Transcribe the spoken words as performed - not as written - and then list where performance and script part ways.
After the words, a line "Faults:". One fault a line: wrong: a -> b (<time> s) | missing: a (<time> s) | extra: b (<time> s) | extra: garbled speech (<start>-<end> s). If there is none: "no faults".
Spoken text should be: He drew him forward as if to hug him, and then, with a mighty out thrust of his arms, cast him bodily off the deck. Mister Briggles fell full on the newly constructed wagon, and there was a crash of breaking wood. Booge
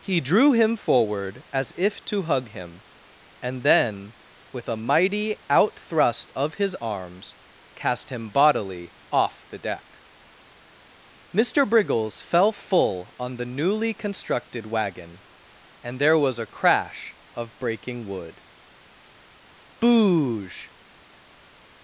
He drew him forward as if to hug him, and then, with a mighty out thrust of his arms, cast him bodily off the deck. Mister Briggles fell full on the newly constructed wagon, and there was a crash of breaking wood. Booge
Faults:
no faults